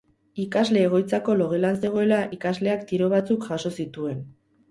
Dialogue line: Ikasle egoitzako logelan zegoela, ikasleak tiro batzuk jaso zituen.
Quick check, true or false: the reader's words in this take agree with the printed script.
true